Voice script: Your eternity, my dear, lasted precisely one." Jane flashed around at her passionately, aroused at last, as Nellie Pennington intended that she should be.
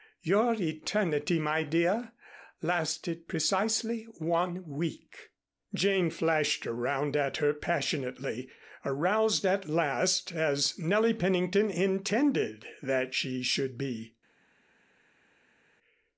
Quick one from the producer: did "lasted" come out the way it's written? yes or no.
yes